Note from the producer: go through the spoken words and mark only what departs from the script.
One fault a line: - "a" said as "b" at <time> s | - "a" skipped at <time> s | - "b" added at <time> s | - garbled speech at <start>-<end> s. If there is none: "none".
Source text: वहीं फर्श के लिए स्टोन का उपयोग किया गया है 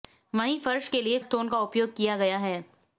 none